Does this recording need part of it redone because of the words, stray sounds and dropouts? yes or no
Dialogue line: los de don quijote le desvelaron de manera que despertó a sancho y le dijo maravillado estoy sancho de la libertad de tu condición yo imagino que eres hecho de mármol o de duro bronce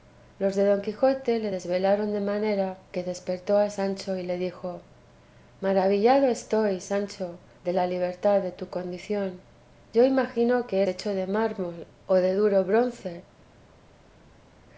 yes